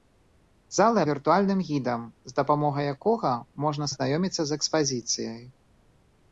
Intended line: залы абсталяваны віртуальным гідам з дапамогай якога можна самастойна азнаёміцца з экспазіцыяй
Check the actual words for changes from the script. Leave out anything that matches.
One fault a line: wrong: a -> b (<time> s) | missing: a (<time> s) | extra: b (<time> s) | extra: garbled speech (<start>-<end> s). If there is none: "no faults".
missing: абсталяваны (1.0 s)
missing: самастойна (3.9 s)